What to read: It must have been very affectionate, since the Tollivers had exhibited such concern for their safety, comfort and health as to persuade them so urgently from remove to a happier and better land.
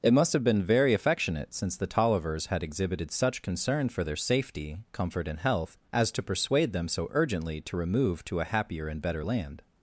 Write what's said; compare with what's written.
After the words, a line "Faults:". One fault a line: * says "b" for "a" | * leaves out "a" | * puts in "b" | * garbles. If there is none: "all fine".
It must have been very affectionate, since the Tollivers had exhibited such concern for their safety, comfort and health as to persuade them so urgently to remove to a happier and better land.
Faults:
* says "to" for "from"